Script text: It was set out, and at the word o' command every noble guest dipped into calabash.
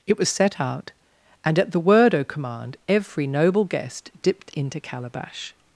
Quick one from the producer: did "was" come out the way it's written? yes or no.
yes